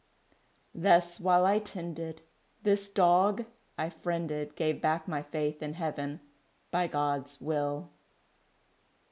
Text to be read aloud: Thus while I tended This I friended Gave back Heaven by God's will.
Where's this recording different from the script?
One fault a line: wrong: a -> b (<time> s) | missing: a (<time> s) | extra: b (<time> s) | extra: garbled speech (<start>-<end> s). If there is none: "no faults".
extra: dog (2.9 s)
extra: my faith in (5.1 s)